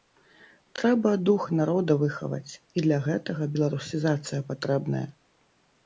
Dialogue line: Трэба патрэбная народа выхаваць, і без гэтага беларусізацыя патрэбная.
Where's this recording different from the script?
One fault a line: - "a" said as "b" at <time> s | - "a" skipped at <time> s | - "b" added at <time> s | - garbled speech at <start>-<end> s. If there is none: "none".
- "патрэбная" said as "дух" at 1.3 s
- "без" said as "для" at 2.9 s